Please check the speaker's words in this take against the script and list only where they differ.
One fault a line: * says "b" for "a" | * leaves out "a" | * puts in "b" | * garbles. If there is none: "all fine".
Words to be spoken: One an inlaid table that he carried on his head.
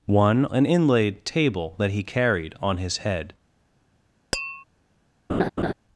all fine